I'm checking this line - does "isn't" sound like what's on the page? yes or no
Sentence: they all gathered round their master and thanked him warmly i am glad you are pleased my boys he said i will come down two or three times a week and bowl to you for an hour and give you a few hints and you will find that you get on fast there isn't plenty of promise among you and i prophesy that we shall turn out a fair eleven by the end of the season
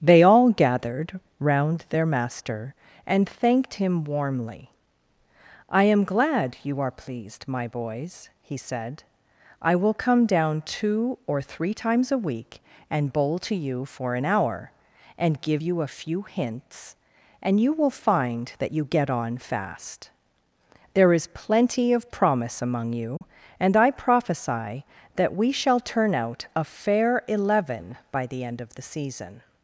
no